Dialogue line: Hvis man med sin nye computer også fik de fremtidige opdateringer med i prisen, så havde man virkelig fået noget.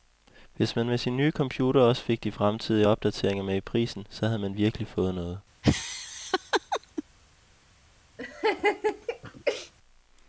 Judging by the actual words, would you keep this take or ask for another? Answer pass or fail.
pass